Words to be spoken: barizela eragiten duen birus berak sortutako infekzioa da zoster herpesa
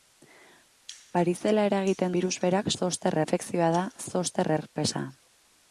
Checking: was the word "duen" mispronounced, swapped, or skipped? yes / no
yes